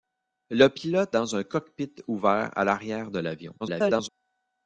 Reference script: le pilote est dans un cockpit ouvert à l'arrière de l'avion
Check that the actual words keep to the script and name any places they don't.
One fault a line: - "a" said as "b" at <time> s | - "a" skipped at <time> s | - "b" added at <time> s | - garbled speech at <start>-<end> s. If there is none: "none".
- "est" skipped at 1.1 s
- garbled speech at 3.6-4.1 s